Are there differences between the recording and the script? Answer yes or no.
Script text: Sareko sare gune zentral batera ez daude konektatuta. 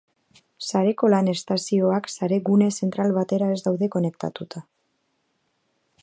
yes